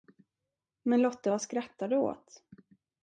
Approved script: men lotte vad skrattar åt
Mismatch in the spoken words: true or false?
true